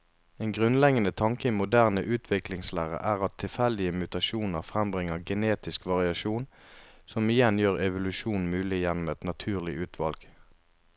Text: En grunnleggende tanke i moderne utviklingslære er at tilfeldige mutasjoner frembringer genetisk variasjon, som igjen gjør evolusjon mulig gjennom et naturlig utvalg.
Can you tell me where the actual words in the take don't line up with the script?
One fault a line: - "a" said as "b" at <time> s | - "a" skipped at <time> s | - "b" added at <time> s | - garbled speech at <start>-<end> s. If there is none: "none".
none